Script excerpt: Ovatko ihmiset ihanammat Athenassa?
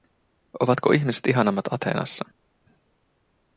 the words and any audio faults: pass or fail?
pass